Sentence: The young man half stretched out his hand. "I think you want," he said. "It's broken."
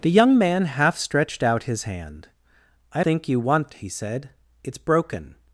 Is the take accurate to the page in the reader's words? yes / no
yes